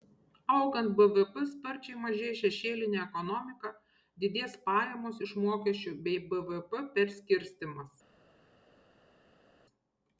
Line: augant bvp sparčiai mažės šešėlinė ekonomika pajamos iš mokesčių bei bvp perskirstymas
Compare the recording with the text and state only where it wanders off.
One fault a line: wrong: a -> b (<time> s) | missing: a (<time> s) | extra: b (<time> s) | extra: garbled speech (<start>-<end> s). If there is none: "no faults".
extra: didės (4.2 s)